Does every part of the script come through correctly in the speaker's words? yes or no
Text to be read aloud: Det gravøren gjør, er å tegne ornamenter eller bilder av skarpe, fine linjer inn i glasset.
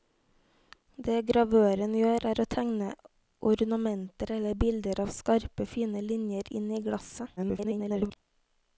no